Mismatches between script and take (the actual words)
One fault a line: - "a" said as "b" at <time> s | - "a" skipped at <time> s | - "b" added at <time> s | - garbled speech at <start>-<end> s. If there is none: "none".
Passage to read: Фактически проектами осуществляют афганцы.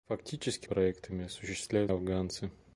none